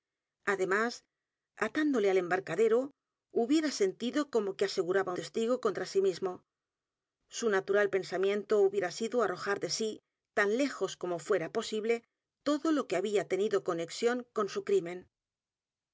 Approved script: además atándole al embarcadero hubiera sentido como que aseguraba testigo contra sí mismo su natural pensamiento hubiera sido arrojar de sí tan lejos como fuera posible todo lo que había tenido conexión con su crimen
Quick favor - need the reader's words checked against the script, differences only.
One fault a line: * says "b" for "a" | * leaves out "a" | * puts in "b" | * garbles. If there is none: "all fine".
all fine